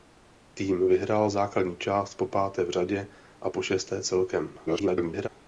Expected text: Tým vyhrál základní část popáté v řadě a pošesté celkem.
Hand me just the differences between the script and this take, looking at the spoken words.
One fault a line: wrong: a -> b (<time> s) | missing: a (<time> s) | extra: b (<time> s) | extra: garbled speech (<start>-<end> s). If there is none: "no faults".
extra: garbled speech (4.7-5.3 s)